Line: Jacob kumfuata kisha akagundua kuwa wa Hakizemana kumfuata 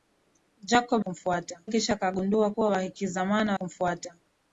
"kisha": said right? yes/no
yes